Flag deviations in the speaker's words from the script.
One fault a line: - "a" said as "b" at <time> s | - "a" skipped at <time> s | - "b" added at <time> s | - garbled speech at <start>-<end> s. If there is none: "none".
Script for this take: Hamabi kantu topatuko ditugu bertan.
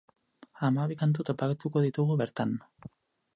none